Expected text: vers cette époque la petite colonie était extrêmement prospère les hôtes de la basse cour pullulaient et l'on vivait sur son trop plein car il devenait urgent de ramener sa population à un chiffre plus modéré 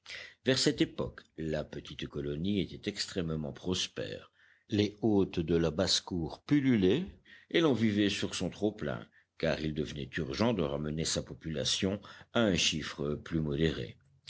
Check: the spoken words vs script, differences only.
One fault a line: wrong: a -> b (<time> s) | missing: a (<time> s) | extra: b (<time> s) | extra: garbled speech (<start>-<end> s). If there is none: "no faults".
no faults